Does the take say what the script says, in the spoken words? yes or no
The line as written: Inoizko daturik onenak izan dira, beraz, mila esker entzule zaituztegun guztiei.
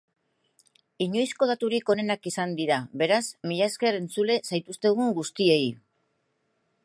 yes